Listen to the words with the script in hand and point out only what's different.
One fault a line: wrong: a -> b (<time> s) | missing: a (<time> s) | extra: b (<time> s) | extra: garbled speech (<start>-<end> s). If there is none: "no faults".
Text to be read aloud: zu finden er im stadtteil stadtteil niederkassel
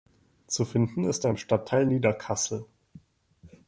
extra: ist (1.0 s)
missing: stadtteil (1.9 s)